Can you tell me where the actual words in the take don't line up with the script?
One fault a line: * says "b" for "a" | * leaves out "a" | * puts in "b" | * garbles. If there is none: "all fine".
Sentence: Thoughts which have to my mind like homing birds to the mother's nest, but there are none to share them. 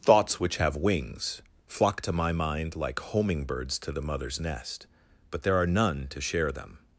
* puts in "wings flock"